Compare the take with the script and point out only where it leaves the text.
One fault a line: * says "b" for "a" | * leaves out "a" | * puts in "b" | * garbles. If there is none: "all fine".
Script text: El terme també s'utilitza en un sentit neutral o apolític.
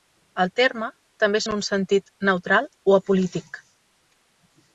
* leaves out "s'utilitza"